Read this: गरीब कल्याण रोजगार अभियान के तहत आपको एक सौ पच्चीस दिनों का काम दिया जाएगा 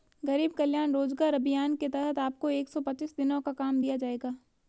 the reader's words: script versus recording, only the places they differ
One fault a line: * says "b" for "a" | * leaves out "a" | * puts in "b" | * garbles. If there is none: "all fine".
all fine